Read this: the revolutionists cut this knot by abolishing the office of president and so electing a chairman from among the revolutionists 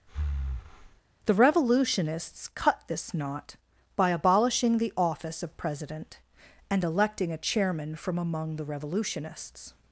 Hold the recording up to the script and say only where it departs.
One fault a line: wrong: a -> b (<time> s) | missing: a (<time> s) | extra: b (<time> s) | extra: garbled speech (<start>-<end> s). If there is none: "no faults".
missing: so (6.8 s)